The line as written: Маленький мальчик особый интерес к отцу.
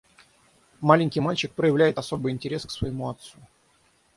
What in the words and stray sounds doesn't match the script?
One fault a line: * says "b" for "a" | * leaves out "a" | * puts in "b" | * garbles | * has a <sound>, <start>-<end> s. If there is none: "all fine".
* puts in "проявляет"
* puts in "своему"